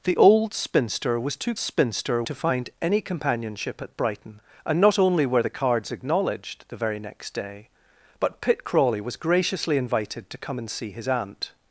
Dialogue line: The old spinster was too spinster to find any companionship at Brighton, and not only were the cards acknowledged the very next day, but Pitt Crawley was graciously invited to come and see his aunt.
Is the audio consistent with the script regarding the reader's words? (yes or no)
yes